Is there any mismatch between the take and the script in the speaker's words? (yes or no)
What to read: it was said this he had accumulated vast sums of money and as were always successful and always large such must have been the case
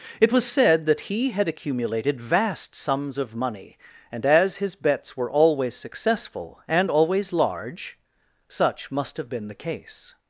yes